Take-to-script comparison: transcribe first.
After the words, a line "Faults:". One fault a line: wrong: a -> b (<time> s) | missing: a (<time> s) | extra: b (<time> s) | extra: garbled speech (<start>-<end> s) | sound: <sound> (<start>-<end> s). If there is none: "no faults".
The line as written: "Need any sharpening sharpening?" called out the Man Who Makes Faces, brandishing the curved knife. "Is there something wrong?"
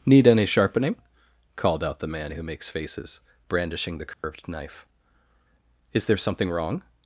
"Need any sharpening?" called out the Man Who Makes Faces, brandishing the curved knife. "Is there something wrong?"
Faults:
missing: sharpening (0.9 s)
sound: dropout (4.1-4.2 s)